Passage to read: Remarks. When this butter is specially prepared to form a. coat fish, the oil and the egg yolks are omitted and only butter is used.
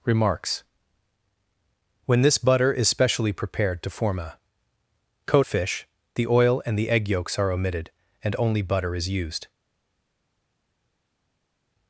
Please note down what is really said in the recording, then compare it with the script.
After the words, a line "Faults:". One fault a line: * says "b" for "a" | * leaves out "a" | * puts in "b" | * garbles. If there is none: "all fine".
Remarks. When this butter is specially prepared to form a. coat fish, the oil and the egg yolks are omitted and only butter is used.
Faults:
all fine